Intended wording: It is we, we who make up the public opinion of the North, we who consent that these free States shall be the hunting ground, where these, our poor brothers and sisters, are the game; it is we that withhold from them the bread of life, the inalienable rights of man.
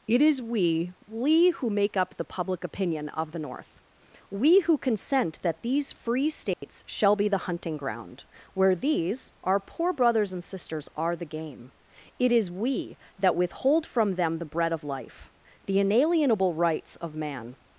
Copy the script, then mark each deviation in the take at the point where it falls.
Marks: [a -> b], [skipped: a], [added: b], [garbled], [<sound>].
It is we, we who make up the public opinion of the North, we who consent that these free States [dropout] shall be the hunting ground, where these, our poor brothers and sisters, are the game; it is we that withhold from them the bread of life, the inalienable rights of man.